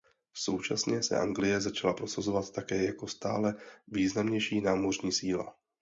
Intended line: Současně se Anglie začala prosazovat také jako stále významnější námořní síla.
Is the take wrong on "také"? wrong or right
right